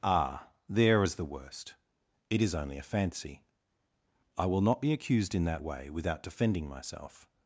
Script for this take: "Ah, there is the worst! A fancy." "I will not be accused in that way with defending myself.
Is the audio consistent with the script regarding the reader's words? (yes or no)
no